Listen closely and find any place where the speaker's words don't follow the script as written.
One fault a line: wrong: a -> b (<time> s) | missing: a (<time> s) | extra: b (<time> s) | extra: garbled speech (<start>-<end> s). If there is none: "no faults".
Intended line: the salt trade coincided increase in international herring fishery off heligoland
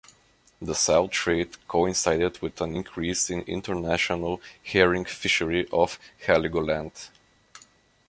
extra: with an (2.4 s)